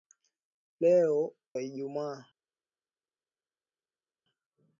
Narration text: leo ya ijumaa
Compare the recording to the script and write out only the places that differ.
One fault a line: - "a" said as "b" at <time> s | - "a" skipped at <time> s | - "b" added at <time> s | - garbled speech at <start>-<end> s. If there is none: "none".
none